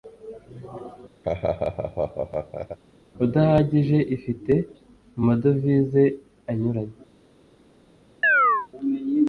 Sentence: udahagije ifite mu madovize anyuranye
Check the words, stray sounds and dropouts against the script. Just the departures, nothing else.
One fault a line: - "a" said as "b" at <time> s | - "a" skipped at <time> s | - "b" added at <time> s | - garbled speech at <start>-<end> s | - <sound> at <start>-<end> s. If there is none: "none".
- laugh at 1.2-2.8 s
- chirp at 8.2-8.7 s